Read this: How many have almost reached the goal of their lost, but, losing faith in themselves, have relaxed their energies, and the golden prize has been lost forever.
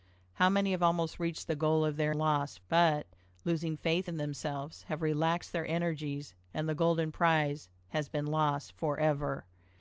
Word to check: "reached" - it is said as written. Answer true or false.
true